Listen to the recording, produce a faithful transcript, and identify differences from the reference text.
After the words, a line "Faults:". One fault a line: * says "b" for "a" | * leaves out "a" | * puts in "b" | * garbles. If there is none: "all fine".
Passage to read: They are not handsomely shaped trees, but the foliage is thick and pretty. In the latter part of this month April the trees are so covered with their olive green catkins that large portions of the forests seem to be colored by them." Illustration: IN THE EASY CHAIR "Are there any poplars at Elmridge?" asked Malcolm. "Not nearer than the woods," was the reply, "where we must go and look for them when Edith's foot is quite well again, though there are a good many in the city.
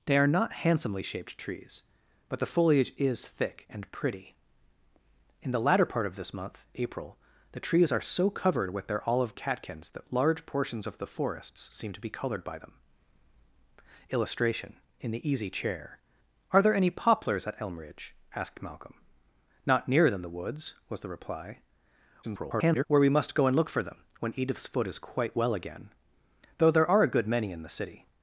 They are not handsomely shaped trees, but the foliage is thick and pretty. In the latter part of this month April the trees are so covered with their olive catkins that large portions of the forests seem to be colored by them." Illustration: IN THE EASY CHAIR "Are there any poplars at Elmridge?" asked Malcolm. "Not nearer than the woods," was the reply, [garbled] "where we must go and look for them when Edith's foot is quite well again, though there are a good many in the city.
Faults:
* leaves out "green"
* garbles